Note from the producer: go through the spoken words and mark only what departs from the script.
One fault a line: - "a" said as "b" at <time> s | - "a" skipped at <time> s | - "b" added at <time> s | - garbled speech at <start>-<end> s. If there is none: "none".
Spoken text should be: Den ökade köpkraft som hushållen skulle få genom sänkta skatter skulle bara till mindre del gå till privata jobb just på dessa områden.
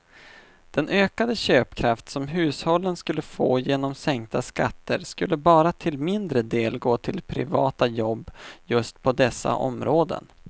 none